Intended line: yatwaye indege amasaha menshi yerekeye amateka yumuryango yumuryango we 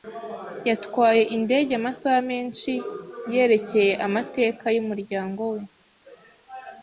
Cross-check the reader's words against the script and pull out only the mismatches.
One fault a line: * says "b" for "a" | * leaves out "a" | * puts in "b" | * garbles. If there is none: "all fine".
* leaves out "yumuryango"